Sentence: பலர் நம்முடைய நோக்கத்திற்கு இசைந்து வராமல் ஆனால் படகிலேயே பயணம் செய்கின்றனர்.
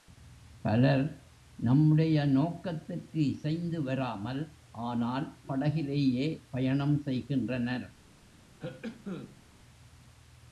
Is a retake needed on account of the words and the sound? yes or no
yes